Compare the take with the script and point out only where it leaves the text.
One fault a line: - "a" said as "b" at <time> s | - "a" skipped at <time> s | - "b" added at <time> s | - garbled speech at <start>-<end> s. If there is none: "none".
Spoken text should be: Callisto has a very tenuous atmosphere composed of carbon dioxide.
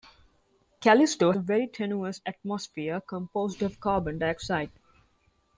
- "has" skipped at 1.3 s